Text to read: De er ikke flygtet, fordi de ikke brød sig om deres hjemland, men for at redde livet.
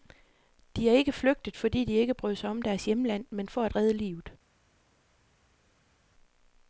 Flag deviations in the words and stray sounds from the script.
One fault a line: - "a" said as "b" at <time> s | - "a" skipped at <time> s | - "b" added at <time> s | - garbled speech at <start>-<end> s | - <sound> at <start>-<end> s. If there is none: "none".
none